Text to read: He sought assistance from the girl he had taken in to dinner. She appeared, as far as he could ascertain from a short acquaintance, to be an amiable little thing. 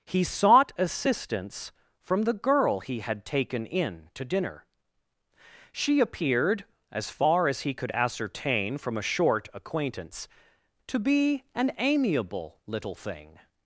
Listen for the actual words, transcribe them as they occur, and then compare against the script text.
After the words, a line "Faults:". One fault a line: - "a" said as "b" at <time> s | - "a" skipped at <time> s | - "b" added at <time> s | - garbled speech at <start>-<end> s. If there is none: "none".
He sought assistance from the girl he had taken in to dinner. She appeared, as far as he could ascertain from a short acquaintance, to be an amiable little thing.
Faults:
none